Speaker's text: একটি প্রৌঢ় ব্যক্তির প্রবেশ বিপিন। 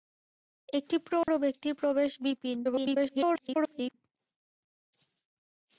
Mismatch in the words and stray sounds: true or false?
true